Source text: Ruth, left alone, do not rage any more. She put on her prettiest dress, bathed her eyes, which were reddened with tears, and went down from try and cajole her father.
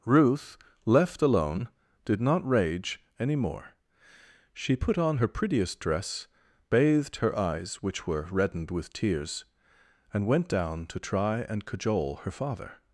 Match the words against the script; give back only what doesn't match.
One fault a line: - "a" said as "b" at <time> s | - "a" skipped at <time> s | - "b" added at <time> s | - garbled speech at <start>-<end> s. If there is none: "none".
- "do" said as "did" at 2.0 s
- "from" said as "to" at 10.9 s